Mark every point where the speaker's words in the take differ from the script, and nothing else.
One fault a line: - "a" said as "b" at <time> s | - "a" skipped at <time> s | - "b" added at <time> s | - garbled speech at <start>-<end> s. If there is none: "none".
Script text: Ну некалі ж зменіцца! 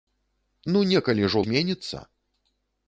none